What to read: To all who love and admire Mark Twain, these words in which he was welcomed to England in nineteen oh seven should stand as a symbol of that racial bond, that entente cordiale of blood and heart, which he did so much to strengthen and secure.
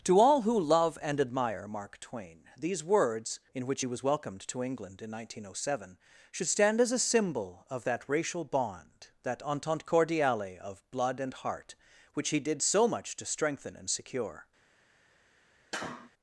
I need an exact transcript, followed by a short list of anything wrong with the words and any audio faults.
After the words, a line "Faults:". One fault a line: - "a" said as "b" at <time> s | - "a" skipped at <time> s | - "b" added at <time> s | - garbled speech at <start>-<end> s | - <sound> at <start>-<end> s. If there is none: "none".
To all who love and admire Mark Twain, these words in which he was welcomed to England in nineteen oh seven should stand as a symbol of that racial bond, that entente cordiale of blood and heart, which he did so much to strengthen and secure.
Faults:
- sneeze at 15.7-16.1 s